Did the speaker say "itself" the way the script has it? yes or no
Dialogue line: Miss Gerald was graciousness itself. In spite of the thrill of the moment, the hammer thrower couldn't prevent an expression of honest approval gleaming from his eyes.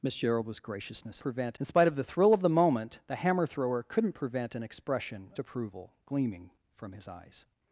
no